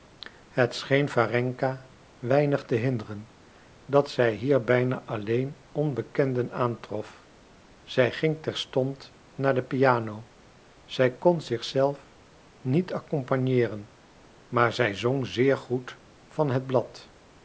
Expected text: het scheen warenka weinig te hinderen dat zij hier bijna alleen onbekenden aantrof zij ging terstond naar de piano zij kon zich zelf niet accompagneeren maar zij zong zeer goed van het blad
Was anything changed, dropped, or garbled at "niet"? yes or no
no